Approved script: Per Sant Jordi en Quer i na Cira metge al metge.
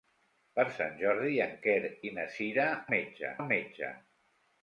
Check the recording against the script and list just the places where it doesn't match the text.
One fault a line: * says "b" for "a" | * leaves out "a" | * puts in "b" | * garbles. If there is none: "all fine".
all fine